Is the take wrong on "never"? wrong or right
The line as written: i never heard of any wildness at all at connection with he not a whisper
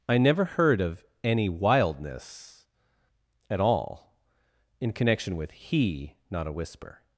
right